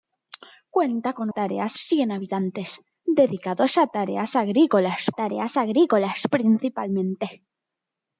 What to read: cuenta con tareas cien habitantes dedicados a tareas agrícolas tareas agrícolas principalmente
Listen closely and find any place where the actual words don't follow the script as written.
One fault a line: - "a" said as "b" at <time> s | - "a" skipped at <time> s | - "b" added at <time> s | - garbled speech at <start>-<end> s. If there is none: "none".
none